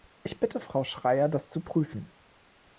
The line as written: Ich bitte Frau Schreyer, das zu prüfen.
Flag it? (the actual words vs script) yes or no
no